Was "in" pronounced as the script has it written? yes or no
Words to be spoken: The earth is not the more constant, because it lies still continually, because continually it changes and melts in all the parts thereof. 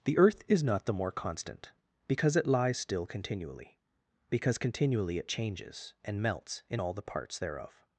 yes